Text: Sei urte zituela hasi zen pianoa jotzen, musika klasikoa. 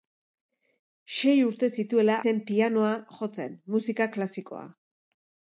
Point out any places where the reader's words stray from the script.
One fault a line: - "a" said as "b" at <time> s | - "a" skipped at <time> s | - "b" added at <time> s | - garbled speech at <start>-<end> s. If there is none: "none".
- "hasi" skipped at 2.1 s